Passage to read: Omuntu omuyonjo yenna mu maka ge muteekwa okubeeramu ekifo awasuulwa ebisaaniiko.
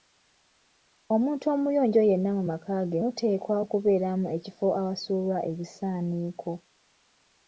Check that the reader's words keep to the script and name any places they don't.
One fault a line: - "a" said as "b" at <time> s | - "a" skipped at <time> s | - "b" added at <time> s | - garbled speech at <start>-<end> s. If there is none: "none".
none